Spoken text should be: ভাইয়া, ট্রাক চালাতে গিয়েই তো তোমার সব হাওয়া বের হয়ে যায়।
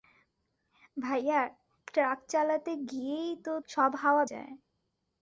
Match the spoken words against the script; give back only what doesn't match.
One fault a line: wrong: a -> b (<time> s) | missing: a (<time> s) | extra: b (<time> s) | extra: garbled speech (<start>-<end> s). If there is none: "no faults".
missing: তোমার (3.5 s)
missing: বের হয়ে (4.2 s)